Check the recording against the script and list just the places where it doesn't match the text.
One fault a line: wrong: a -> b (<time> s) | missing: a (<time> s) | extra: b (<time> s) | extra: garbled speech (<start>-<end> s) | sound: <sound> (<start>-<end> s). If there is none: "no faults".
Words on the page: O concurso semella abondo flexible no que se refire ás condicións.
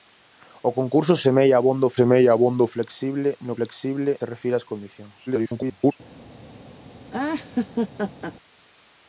extra: semella abondo (2.0 s)
wrong: que -> flexible (3.6 s)
extra: garbled speech (5.3-5.9 s)
sound: laugh (7.1-8.3 s)